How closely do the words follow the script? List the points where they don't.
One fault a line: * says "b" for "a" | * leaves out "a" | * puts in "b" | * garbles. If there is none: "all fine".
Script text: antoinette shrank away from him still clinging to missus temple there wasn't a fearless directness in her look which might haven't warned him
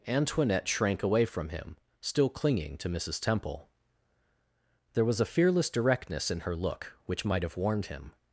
* says "was" for "wasn't"
* says "have" for "haven't"